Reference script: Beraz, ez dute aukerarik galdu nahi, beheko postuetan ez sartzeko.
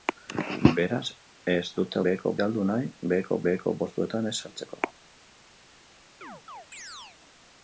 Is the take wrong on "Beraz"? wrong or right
right